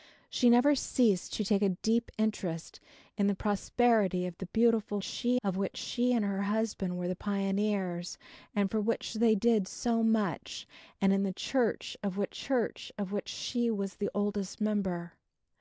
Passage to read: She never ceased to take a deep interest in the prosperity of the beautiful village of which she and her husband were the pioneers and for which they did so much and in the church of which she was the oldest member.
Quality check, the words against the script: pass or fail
fail